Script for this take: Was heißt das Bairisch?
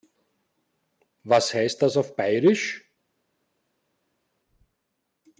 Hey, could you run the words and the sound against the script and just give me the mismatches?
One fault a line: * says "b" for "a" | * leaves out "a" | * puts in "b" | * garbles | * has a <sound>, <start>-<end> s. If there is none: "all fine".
* puts in "auf"